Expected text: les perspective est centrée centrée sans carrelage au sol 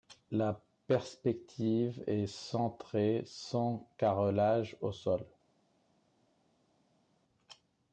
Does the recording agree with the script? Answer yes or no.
no